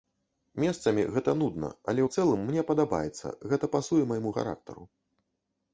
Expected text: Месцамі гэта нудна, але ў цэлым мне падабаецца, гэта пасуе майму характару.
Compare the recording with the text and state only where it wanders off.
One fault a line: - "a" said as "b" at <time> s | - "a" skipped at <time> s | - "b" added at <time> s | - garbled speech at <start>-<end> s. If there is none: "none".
none